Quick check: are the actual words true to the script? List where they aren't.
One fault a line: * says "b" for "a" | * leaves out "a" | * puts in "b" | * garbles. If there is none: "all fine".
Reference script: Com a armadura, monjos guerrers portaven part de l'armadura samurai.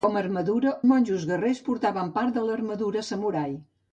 all fine